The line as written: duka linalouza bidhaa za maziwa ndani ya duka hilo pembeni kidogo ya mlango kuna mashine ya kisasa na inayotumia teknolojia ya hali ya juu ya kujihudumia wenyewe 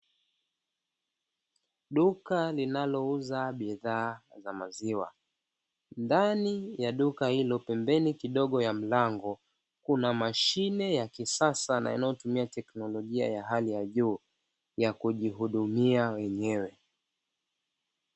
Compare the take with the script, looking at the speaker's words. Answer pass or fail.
pass